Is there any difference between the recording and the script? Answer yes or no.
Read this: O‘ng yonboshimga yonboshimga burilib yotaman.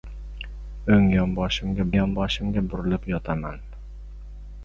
no